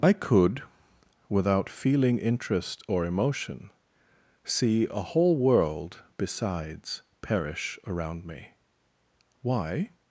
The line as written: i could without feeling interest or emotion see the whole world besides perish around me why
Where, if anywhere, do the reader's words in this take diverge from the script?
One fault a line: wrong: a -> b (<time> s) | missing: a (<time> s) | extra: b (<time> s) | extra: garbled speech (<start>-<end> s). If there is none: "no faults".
wrong: the -> a (4.9 s)